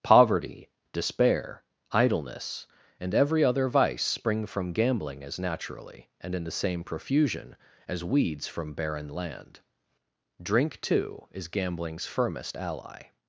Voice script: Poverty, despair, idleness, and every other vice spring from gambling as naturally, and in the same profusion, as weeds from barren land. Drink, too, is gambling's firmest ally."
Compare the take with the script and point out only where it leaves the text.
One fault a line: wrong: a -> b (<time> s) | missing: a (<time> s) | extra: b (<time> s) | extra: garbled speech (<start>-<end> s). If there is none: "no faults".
no faults